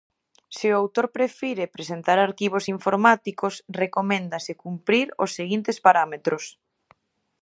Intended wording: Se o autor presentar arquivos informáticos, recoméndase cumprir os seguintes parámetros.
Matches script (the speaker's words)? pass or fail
fail